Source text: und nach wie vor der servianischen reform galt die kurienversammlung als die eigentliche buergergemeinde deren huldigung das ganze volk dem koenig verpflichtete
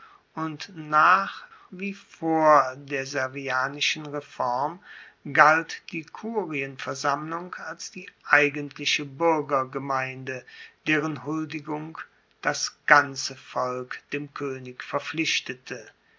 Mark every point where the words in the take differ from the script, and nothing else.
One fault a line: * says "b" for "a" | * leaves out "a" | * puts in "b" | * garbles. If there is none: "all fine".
all fine